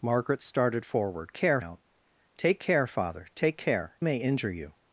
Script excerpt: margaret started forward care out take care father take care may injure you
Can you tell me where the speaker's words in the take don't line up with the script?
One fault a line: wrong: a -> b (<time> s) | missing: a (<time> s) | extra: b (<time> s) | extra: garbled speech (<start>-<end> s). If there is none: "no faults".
no faults